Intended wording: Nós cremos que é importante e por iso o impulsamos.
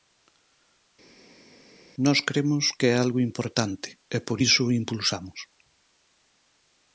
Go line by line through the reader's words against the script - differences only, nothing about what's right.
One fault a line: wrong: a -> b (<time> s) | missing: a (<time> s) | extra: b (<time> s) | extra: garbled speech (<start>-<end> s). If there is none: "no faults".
extra: algo (3.0 s)